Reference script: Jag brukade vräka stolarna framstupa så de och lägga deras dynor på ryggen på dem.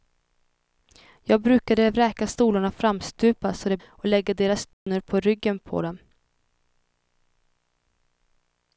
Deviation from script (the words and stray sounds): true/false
true